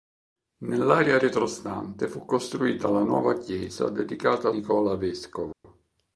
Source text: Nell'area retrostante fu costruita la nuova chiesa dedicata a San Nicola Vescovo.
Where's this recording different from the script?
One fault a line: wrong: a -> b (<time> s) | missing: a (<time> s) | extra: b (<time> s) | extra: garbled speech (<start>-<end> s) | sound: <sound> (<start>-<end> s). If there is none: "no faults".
missing: San (4.5 s)
sound: dropout (5.5-5.6 s)